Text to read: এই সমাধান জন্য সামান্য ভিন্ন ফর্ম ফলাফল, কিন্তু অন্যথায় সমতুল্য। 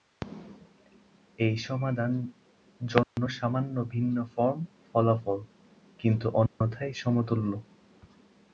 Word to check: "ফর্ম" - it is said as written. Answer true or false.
true